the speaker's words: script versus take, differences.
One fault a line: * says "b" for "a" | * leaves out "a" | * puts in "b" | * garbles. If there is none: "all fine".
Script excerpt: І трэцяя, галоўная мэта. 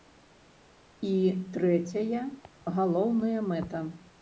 all fine